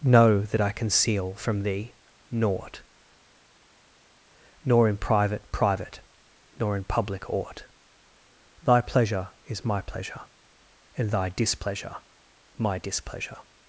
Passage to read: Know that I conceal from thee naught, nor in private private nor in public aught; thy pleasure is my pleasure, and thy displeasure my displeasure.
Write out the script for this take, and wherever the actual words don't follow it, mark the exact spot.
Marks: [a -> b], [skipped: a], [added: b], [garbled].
Know that I conceal from thee naught, nor in private private nor in public aught; thy pleasure is my pleasure, and thy displeasure my displeasure.